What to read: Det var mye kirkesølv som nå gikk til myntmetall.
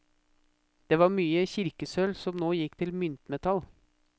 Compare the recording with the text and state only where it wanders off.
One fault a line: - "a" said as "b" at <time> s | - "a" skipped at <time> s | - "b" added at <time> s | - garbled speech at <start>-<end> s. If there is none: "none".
none